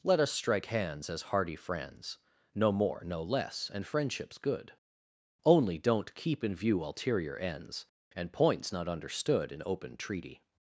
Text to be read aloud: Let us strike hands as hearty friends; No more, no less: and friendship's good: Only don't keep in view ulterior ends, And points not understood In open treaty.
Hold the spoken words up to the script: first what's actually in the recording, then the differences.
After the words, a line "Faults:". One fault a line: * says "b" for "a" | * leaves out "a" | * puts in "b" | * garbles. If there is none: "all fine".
Let us strike hands as hearty friends; No more, no less: and friendship's good: Only don't keep in view ulterior ends, And points not understood In open treaty.
Faults:
all fine